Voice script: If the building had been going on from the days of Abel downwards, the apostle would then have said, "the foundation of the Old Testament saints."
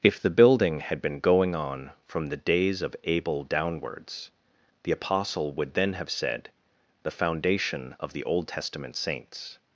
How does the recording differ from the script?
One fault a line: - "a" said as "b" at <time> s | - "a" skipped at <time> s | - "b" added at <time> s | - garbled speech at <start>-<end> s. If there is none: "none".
none